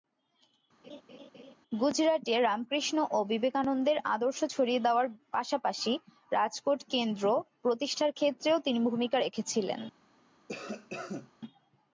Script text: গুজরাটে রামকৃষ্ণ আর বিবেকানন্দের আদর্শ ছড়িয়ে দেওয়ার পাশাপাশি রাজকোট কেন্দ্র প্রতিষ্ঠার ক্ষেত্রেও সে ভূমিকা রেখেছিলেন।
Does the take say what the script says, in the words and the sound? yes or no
no